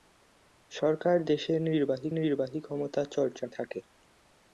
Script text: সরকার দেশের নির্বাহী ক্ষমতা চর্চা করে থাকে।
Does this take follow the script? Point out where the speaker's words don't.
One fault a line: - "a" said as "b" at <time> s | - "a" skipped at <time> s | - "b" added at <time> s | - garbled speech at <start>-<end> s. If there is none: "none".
- "নির্বাহী" added at 2.2 s
- "করে" skipped at 3.5 s